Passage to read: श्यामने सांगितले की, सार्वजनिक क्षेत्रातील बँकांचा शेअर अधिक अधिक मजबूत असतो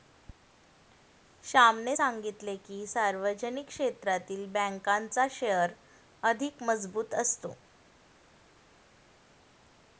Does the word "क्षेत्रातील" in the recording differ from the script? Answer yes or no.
no